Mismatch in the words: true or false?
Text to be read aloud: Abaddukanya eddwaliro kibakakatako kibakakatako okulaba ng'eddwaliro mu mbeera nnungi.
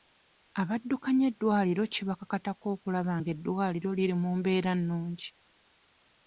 true